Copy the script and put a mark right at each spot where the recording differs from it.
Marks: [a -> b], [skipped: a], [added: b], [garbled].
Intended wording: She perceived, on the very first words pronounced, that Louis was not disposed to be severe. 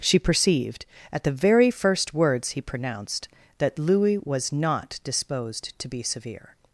She perceived, [on -> at] the very first words [added: he] pronounced, that Louis was not disposed to be severe.